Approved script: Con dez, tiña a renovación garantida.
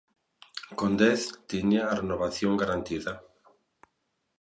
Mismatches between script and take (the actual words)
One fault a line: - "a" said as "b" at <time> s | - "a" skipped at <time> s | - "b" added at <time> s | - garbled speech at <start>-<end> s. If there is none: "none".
none